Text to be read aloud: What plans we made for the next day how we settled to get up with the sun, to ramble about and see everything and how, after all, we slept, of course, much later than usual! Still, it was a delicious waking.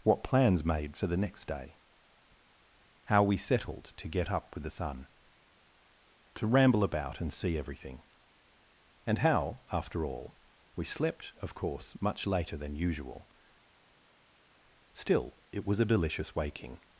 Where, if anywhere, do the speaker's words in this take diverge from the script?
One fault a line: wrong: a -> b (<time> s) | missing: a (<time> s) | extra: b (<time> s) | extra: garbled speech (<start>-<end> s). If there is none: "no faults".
missing: we (0.7 s)